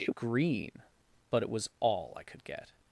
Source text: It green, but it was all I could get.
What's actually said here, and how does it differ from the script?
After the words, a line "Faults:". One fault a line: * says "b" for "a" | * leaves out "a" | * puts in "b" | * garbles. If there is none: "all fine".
It green, but it was all I could get.
Faults:
all fine